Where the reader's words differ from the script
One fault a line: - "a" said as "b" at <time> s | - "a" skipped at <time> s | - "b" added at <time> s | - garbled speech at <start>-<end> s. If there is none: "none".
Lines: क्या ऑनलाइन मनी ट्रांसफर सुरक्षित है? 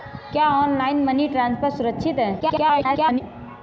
- garbled speech at 2.4-3.2 s